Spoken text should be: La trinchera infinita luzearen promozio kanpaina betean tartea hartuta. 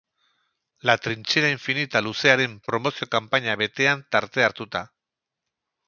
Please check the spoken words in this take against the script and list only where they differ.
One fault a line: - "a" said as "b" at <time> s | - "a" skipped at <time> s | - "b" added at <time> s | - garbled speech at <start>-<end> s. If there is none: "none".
none